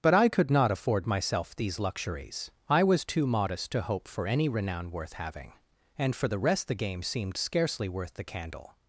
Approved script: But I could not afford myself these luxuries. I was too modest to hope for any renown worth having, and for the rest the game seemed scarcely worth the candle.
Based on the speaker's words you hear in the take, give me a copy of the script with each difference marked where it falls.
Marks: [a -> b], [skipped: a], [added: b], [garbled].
But I could not afford myself these luxuries. I was too modest to hope for any renown worth having, and for the rest the game seemed scarcely worth the candle.